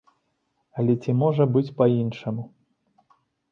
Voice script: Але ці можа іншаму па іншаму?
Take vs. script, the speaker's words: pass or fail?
fail